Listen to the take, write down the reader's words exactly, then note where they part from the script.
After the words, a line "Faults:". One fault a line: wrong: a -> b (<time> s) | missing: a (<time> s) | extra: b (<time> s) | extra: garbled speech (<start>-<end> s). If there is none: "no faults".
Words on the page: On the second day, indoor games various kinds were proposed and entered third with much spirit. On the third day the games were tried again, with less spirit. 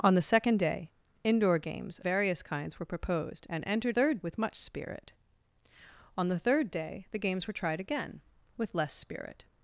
On the second day, indoor games various kinds were proposed and entered third with much spirit. On the third day the games were tried again, with less spirit.
Faults:
no faults